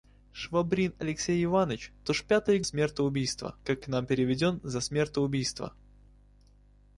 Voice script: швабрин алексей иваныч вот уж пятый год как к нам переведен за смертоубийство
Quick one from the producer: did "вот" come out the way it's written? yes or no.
no